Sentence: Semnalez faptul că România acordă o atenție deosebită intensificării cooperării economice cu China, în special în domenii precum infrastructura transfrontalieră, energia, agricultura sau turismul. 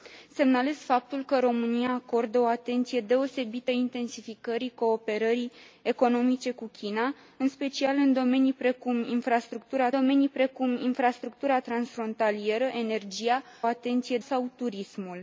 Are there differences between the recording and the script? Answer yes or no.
yes